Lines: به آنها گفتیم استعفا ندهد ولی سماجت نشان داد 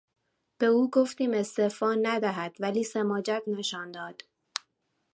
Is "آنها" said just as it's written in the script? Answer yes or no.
no